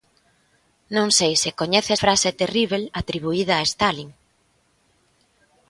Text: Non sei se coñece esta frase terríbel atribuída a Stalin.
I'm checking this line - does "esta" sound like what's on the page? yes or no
no